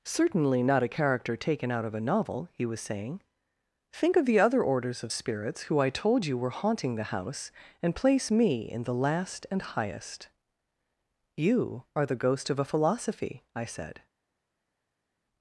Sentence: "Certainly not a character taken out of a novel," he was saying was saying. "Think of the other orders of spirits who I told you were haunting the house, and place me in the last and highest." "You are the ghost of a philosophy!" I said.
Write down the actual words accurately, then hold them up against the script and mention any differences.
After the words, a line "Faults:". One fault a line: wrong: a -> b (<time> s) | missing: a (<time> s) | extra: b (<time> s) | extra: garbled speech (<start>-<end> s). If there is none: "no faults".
"Certainly not a character taken out of a novel," he was saying. "Think of the other orders of spirits who I told you were haunting the house, and place me in the last and highest." "You are the ghost of a philosophy!" I said.
Faults:
missing: was saying (3.2 s)